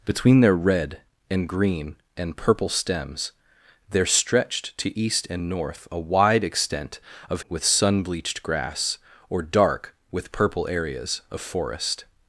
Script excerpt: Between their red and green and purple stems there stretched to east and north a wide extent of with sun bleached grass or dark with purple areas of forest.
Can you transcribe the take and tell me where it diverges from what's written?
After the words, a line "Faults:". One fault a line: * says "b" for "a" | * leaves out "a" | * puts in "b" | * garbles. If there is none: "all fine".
Between their red and green and purple stems there stretched to east and north a wide extent of with sun bleached grass or dark with purple areas of forest.
Faults:
all fine